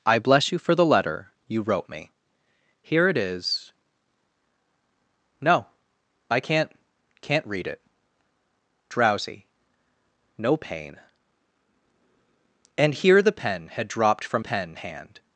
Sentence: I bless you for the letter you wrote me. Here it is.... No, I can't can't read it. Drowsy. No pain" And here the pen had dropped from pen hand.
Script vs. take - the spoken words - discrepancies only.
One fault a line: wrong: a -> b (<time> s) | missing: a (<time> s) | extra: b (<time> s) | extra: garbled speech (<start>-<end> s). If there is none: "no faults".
no faults